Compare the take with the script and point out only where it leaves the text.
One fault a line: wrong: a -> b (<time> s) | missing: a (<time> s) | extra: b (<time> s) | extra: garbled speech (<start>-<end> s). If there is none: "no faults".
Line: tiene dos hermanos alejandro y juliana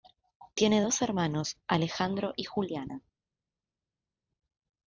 no faults